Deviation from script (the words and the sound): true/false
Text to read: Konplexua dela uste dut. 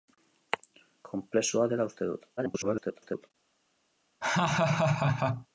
true